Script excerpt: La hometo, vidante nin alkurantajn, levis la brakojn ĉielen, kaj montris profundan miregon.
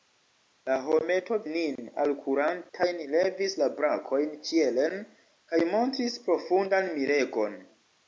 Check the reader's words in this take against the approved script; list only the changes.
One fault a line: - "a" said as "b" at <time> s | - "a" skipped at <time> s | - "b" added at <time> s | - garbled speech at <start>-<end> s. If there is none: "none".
- "vidante" skipped at 1.4 s